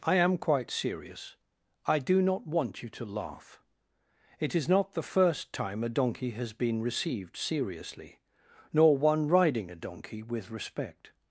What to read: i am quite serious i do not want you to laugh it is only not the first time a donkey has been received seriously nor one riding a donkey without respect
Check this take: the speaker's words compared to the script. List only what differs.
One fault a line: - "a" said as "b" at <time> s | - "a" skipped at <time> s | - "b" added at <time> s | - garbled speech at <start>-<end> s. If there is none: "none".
- "only" skipped at 4.7 s
- "without" said as "with" at 10.2 s